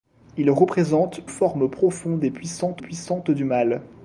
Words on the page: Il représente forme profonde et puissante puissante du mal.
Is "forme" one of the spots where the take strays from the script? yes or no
no